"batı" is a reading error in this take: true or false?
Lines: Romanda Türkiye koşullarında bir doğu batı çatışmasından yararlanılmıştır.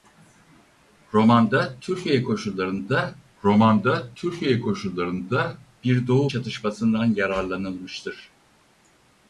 true